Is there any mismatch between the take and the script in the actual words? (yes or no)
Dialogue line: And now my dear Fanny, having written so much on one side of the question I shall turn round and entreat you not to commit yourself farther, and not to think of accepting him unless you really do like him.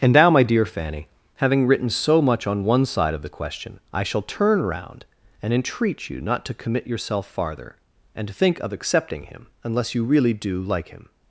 yes